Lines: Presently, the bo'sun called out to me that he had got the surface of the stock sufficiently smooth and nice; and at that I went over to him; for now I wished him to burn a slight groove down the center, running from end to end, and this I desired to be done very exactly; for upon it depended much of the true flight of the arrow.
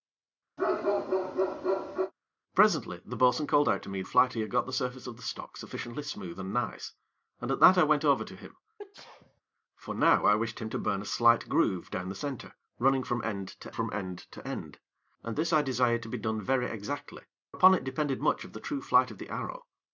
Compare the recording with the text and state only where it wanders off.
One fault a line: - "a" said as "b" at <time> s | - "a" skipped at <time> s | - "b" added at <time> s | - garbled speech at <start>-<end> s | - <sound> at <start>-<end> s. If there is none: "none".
- bark at 0.6-2.1 s
- "that" said as "flight" at 4.0 s
- sneeze at 8.8-9.4 s
- "from" added at 13.7 s
- "to end" added at 14.3 s
- "for" skipped at 17.2 s